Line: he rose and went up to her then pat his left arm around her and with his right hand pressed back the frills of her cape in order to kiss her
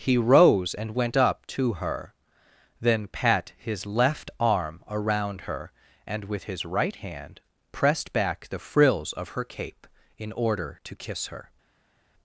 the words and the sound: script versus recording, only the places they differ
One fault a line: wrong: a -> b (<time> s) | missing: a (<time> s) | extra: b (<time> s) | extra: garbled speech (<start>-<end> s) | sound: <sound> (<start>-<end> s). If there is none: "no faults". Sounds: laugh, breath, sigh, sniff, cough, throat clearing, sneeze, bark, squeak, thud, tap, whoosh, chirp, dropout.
no faults